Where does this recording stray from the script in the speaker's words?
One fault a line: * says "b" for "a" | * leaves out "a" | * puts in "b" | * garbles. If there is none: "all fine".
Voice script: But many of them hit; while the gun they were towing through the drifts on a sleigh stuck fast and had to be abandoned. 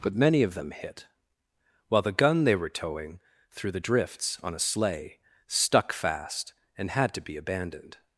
all fine